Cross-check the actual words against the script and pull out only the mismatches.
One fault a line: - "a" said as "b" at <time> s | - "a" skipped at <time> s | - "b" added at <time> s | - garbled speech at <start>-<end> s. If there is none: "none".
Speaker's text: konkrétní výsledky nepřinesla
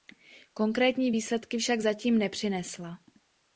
- "však zatím" added at 1.6 s